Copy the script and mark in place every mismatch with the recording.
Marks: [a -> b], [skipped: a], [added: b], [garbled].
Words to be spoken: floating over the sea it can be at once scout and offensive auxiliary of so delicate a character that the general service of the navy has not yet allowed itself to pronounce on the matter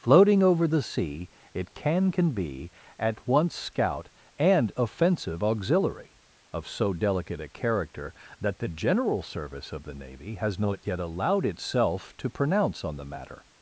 floating over the sea it can [added: can] be at once scout and offensive auxiliary of so delicate a character that the general service of the navy has not yet allowed itself to pronounce on the matter